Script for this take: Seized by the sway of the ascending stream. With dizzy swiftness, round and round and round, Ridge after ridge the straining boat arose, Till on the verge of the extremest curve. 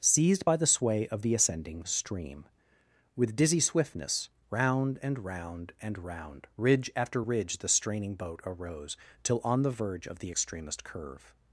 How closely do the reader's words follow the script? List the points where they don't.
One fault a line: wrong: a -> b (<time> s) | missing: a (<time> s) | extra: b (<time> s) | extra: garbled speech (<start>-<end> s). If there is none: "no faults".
no faults